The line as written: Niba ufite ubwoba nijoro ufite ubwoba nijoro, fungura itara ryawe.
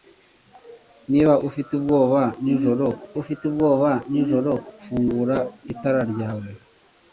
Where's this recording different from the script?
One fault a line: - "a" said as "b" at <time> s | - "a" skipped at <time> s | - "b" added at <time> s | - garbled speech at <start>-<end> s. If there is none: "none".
none